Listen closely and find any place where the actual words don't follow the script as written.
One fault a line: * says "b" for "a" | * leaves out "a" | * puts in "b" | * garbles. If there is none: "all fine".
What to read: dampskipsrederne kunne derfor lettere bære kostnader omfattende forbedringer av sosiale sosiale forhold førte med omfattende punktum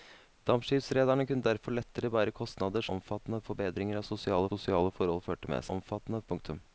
all fine